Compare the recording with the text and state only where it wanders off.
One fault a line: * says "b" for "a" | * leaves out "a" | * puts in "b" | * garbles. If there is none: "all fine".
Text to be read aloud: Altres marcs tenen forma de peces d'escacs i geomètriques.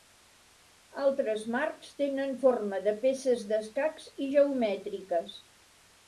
all fine